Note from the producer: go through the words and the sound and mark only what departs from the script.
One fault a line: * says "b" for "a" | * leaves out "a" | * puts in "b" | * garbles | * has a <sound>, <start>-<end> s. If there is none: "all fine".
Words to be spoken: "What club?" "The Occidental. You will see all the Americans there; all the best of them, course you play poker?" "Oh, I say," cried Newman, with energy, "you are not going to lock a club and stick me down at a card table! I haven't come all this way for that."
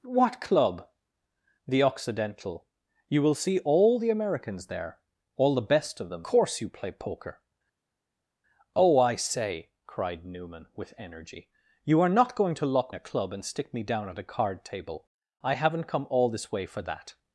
all fine